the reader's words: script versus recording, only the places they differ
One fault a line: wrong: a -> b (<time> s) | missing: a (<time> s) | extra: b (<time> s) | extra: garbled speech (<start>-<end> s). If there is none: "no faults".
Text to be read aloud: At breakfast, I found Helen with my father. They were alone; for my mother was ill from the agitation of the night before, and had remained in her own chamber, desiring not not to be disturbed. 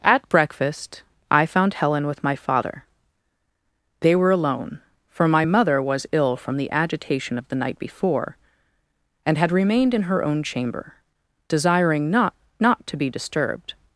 no faults